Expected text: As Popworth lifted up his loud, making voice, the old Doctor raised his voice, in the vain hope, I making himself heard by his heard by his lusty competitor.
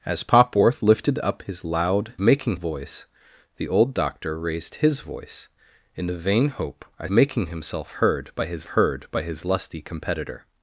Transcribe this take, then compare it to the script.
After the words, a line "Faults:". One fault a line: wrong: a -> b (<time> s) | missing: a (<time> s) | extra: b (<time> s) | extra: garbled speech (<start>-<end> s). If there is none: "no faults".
As Popworth lifted up his loud, making voice, the old Doctor raised his voice, in the vain hope, I making himself heard by his heard by his lusty competitor.
Faults:
no faults